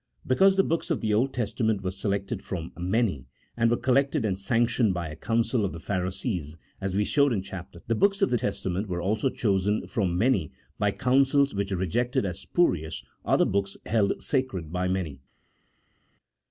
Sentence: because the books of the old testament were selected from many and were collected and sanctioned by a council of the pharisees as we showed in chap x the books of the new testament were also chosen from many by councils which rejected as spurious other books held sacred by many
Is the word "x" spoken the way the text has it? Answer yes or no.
no